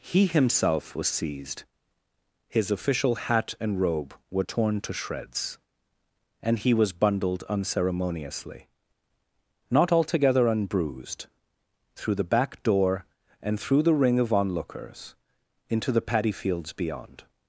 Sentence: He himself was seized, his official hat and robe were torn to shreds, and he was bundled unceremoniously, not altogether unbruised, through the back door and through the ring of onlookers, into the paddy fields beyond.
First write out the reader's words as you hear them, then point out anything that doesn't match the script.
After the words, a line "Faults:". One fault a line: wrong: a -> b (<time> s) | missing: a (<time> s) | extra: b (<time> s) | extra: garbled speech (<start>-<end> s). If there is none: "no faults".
He himself was seized, his official hat and robe were torn to shreds, and he was bundled unceremoniously, not altogether unbruised, through the back door and through the ring of onlookers, into the paddy fields beyond.
Faults:
no faults